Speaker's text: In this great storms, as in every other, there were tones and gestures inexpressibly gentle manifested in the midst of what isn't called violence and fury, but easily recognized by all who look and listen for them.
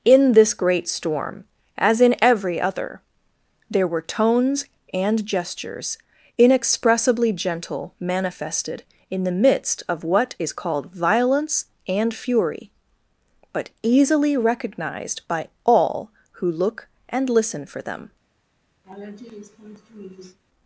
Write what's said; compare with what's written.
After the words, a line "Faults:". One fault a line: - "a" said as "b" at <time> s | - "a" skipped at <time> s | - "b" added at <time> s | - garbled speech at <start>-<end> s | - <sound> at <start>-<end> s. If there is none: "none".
In this great storm, as in every other, there were tones and gestures inexpressibly gentle manifested in the midst of what is called violence and fury, but easily recognized by all who look and listen for them.
Faults:
- "storms" said as "storm" at 0.9 s
- "isn't" said as "is" at 10.4 s
- laugh at 18.8-20.4 s